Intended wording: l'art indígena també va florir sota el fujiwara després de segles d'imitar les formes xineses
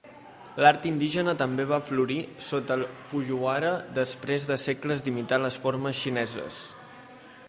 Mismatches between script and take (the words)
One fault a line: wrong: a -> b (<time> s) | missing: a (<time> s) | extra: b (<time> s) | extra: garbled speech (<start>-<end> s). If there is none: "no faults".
no faults